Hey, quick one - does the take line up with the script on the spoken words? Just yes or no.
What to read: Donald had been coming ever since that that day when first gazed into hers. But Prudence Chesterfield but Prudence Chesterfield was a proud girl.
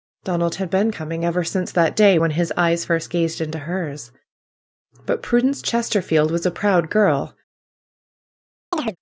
no